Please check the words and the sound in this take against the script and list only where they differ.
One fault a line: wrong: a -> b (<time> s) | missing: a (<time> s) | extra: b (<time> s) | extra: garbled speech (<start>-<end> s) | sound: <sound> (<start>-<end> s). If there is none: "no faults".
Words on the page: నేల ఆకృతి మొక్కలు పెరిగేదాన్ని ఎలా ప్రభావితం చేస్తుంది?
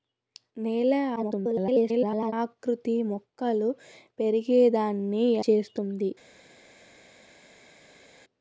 extra: garbled speech (1.2-2.3 s)
missing: ఎలా ప్రభావితం (5.3 s)